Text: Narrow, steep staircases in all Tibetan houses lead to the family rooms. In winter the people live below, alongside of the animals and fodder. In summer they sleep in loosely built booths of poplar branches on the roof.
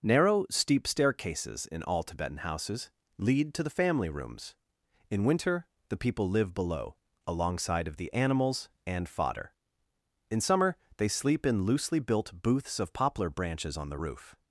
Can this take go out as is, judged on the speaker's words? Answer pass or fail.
pass